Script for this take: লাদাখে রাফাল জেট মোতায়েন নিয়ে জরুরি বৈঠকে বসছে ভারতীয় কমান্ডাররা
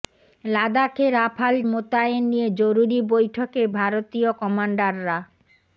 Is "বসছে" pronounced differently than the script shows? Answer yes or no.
yes